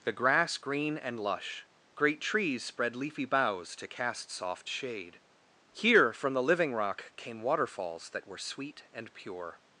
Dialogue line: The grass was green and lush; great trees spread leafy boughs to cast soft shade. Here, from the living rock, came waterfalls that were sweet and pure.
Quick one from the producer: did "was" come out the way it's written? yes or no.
no